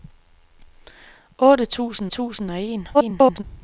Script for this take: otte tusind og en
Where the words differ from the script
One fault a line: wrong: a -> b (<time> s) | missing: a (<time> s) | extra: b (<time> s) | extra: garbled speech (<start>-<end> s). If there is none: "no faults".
extra: tusind (2.1 s)
extra: garbled speech (2.9-3.4 s)